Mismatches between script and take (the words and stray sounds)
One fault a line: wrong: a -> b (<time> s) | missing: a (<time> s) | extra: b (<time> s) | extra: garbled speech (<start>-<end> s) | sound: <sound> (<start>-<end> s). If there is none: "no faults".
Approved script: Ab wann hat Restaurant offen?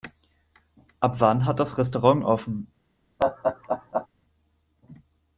extra: das (1.6 s)
sound: laugh (3.2-4.1 s)